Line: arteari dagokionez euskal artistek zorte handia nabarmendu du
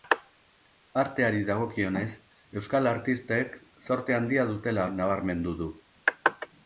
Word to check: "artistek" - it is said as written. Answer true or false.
true